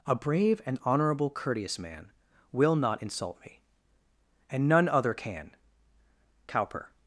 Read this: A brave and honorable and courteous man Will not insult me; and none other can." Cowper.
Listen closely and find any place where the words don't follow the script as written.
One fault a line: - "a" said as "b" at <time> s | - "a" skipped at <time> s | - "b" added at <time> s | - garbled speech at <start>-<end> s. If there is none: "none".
- "and" skipped at 1.3 s